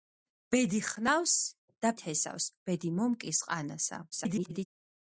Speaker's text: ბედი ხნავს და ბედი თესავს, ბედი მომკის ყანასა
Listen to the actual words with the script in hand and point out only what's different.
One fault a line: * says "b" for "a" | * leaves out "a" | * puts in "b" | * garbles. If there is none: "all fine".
* leaves out "ბედი"
* garbles